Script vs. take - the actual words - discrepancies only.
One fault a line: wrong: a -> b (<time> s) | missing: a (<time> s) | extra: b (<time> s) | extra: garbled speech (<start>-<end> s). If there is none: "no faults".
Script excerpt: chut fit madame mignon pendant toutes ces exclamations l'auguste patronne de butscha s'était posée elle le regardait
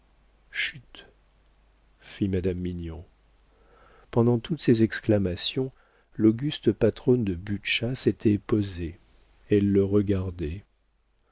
no faults